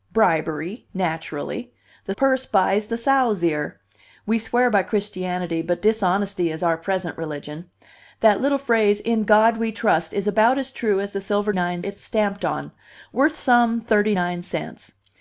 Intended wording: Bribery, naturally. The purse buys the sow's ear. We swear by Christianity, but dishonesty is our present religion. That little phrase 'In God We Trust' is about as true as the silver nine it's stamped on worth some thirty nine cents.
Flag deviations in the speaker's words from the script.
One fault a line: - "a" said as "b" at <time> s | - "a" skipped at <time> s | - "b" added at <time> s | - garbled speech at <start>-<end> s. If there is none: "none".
none